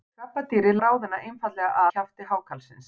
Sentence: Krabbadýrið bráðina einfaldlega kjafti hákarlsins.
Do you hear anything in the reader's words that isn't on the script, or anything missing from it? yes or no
no